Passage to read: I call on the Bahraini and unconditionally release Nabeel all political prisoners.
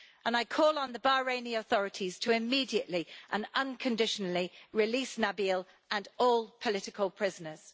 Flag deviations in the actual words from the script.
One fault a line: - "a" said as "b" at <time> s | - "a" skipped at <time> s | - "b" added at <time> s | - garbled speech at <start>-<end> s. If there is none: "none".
- "authorities to immediately" added at 1.6 s
- "and" added at 5.9 s